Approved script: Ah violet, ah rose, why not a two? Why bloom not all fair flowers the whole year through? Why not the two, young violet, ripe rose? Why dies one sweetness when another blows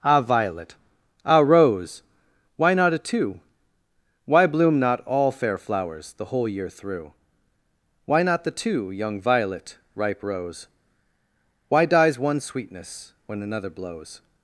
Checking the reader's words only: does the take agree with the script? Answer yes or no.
yes